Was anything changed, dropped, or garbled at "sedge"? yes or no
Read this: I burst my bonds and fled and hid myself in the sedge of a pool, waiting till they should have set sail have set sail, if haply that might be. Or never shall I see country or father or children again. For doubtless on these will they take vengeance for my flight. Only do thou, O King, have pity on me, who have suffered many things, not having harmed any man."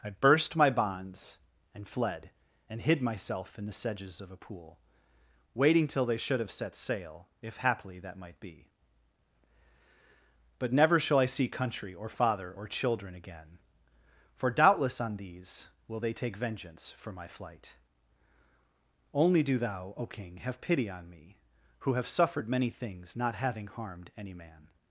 yes